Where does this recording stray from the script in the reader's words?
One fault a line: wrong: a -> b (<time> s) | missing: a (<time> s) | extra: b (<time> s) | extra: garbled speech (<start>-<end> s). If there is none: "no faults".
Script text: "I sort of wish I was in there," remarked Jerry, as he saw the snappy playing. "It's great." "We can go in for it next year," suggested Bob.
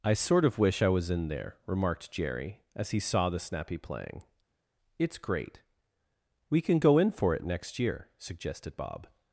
no faults